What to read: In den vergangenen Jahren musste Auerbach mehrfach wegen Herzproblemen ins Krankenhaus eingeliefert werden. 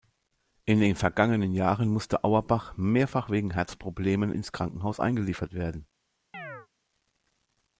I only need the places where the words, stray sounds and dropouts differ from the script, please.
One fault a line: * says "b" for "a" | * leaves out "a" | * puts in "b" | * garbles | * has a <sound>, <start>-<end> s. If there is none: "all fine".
* has a chirp, 6.3-6.7 s